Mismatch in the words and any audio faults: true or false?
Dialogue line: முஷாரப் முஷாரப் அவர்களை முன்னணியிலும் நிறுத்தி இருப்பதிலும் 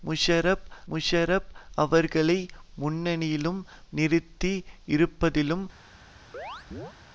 true